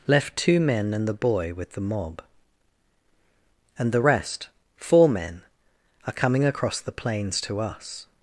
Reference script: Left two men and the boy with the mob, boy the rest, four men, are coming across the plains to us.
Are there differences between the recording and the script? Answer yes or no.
yes